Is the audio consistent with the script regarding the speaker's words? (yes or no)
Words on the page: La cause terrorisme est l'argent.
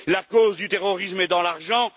no